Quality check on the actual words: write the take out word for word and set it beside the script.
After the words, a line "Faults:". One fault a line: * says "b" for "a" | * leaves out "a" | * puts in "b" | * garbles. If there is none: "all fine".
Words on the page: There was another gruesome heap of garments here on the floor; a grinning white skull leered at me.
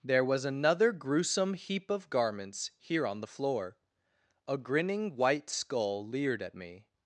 There was another gruesome heap of garments here on the floor; a grinning white skull leered at me.
Faults:
all fine